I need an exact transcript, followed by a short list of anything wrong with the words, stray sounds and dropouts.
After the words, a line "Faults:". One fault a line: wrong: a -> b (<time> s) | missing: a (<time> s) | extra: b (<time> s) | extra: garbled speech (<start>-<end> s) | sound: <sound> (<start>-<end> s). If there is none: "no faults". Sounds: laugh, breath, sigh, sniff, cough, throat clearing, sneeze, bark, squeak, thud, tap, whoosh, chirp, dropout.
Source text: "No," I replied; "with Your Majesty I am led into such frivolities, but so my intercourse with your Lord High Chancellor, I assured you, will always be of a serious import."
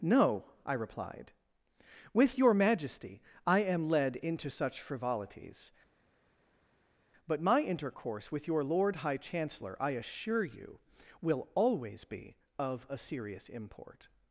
"No," I replied; "with Your Majesty I am led into such frivolities, but my intercourse with your Lord High Chancellor, I assure you, will always be of a serious import."
Faults:
missing: so (7.4 s)
wrong: assured -> assure (9.9 s)